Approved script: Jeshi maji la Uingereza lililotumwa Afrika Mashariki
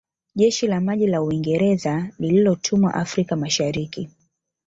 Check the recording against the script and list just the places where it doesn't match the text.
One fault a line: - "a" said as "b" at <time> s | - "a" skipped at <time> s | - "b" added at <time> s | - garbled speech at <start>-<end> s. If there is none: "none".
- "la" added at 0.7 s